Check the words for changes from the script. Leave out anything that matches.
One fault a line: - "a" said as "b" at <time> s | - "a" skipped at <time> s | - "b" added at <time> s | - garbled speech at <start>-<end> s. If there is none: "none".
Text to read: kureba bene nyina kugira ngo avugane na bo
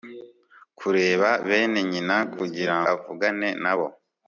- "ngo" skipped at 2.8 s